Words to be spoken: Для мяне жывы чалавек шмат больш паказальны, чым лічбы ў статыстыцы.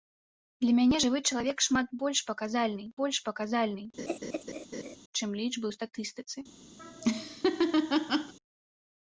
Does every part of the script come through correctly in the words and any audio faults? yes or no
no